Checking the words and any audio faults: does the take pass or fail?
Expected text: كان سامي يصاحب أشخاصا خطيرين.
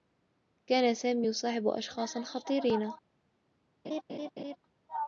fail